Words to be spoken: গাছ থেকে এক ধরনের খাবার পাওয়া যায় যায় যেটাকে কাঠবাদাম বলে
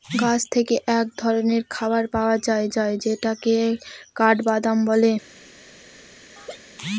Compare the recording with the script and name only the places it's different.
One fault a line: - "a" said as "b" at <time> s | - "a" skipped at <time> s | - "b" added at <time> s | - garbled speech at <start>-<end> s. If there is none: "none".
none